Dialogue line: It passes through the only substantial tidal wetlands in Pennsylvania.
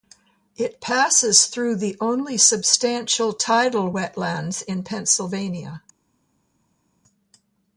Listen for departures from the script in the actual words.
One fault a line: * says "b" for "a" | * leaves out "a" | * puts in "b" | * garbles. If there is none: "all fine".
all fine